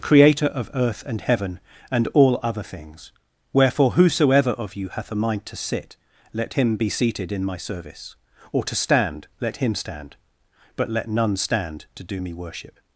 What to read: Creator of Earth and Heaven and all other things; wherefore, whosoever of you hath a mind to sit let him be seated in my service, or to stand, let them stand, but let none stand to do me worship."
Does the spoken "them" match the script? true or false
false